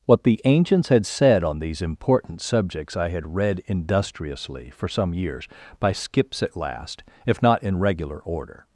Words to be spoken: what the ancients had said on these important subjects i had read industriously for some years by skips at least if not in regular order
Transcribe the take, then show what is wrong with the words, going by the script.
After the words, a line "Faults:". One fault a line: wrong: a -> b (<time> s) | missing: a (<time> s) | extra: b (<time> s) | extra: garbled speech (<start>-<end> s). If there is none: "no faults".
what the ancients had said on these important subjects i had read industriously for some years by skips at last if not in regular order
Faults:
wrong: least -> last (6.6 s)